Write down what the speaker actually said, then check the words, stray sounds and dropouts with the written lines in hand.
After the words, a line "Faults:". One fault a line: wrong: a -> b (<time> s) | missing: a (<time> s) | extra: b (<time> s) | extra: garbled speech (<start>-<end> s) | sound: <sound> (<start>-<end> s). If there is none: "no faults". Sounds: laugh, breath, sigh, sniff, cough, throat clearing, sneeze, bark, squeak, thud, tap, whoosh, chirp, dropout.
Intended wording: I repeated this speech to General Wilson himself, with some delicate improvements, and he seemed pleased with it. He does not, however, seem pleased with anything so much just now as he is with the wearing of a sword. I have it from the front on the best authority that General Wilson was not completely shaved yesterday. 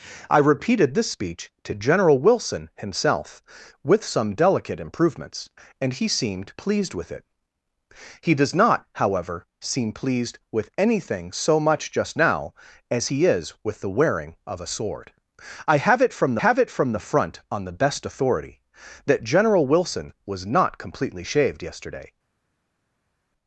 I repeated this speech to General Wilson himself, with some delicate improvements, and he seemed pleased with it. He does not, however, seem pleased with anything so much just now as he is with the wearing of a sword. I have it from have it from the front on the best authority that General Wilson was not completely shaved yesterday.
Faults:
extra: have it from (16.4 s)